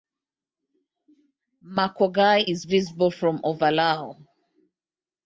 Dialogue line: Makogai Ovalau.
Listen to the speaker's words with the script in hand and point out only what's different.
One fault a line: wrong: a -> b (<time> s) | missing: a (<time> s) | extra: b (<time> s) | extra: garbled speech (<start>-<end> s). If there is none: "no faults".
extra: is visible from (2.4 s)